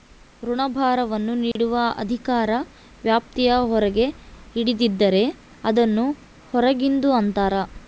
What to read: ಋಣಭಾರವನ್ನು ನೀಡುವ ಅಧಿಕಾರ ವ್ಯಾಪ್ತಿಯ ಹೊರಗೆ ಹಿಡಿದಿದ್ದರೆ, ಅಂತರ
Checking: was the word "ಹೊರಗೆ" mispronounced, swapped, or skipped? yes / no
no